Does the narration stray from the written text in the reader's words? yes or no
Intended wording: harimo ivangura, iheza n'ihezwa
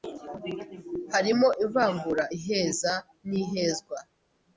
no